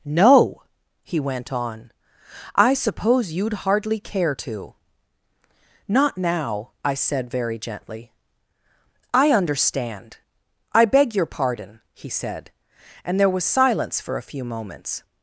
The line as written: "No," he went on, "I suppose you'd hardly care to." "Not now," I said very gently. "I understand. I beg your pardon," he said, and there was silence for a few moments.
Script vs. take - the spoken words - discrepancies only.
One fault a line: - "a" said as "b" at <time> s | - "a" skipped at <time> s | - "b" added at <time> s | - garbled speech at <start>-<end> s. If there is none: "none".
none